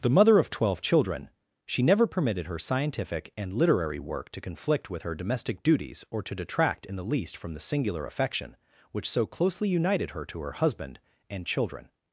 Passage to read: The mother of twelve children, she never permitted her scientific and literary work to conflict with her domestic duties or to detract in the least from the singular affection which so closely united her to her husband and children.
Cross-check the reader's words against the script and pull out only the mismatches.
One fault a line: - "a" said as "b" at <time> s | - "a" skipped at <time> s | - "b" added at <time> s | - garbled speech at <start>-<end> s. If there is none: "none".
none